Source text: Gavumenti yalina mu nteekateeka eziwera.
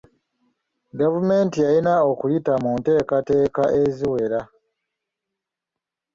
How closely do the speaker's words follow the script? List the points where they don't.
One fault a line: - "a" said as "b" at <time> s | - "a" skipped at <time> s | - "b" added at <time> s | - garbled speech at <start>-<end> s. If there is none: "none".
- "okuyita" added at 2.1 s